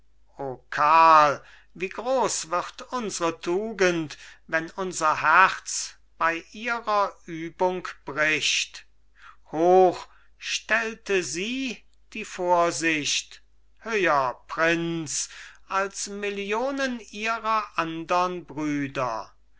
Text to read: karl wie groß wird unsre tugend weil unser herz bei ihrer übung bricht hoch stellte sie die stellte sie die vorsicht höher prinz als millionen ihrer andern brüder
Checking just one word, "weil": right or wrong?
wrong